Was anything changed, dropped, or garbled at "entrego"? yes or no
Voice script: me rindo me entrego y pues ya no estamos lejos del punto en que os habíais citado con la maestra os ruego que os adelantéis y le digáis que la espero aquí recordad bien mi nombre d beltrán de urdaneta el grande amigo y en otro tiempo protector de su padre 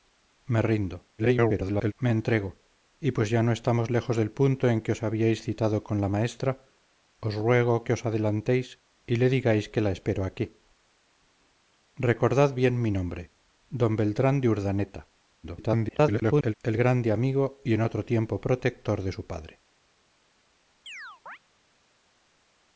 no